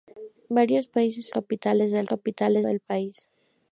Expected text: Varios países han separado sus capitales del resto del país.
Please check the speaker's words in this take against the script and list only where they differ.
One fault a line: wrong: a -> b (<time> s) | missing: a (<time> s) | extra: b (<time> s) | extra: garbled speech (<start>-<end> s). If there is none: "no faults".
missing: han separado sus (1.3 s)
wrong: resto -> capitales (2.0 s)